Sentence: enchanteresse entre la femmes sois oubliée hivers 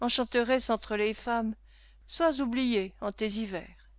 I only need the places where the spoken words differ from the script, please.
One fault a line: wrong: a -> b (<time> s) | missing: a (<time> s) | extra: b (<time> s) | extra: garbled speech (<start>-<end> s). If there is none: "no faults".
wrong: la -> les (0.9 s)
extra: en tes (3.0 s)